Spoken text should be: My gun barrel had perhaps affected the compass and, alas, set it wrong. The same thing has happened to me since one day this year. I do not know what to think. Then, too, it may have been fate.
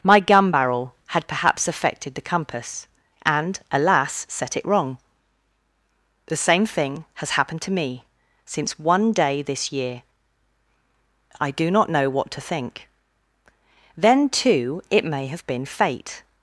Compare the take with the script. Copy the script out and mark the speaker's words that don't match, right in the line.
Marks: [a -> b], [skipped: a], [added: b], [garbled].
My gun barrel had perhaps affected the compass and, alas, set it wrong. The same thing has happened to me since one day this year. I do not know what to think. Then, too, it may have been fate.